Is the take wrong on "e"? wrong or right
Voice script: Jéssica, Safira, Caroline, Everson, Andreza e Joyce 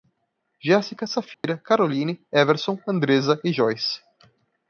right